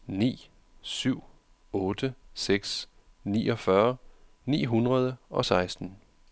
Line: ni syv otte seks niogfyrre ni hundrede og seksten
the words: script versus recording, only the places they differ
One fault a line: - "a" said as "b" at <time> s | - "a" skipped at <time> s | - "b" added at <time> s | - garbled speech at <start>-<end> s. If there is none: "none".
none